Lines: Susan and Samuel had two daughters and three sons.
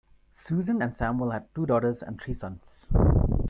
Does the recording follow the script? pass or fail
pass